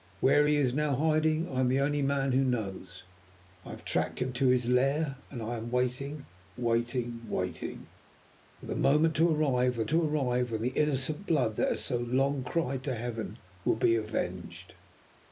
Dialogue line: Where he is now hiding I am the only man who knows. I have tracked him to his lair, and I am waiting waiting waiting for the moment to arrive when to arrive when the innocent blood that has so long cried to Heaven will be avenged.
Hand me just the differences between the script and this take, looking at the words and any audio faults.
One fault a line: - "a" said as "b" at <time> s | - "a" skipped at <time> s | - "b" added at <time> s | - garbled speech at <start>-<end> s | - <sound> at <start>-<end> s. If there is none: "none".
none